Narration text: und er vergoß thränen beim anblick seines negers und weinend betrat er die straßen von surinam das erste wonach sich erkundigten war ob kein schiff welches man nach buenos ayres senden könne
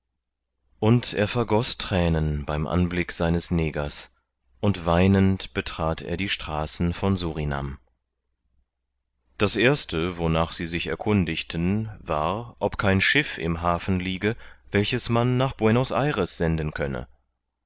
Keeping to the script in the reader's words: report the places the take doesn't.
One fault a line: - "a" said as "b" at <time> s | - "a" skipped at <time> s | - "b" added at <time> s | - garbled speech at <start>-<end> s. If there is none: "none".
- "sie" added at 10.5 s
- "im hafen liege" added at 13.4 s